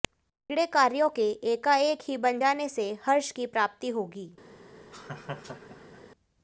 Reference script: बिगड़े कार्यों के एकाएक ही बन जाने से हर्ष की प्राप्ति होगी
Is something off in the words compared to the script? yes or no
no